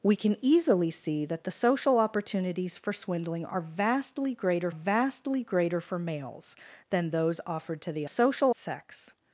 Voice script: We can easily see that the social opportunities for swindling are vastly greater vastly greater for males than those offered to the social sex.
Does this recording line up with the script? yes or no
yes